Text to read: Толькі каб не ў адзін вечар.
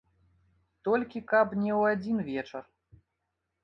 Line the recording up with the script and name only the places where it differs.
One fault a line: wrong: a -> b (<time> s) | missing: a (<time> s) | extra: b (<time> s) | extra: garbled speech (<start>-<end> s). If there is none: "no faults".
no faults